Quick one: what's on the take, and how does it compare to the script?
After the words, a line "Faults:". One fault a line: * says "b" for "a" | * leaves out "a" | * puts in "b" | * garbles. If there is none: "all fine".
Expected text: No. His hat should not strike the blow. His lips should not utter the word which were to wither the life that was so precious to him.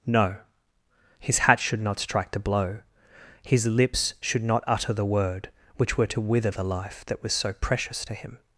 No. His hat should not strike the blow. His lips should not utter the word which were to wither the life that was so precious to him.
Faults:
all fine